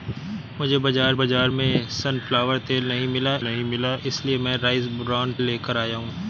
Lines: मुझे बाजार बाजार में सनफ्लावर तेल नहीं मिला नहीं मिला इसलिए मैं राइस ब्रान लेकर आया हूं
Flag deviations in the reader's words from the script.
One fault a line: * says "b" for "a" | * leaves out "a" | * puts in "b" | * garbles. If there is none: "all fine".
all fine